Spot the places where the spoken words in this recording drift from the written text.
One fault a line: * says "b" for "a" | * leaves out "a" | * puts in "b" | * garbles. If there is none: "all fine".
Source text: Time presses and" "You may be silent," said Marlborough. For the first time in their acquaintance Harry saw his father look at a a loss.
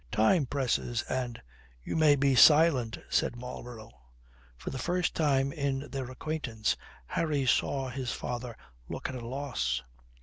* leaves out "a"